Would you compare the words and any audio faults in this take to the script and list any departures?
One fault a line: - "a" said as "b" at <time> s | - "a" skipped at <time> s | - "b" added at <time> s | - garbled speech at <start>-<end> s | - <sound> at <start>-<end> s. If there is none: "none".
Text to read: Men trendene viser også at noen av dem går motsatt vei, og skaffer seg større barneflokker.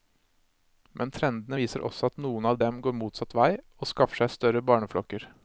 none